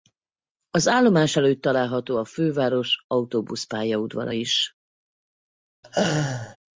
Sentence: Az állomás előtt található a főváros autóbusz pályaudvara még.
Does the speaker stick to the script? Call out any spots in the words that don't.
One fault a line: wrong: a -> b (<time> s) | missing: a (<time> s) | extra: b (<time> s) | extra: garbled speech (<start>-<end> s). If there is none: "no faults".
wrong: még -> is (4.3 s)